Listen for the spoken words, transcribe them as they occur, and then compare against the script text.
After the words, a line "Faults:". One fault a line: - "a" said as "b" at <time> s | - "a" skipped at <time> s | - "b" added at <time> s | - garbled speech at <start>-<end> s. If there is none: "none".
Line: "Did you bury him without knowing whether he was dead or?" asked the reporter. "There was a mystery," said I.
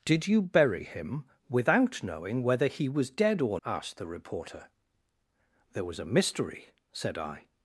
"Did you bury him without knowing whether he was dead or?" asked the reporter. "There was a mystery," said I.
Faults:
none